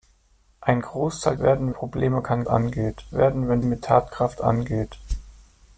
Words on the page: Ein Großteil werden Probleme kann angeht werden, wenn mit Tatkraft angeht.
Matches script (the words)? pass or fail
pass